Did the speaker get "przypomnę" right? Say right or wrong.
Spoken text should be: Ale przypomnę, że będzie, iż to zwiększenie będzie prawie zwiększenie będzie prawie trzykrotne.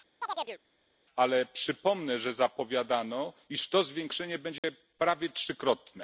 right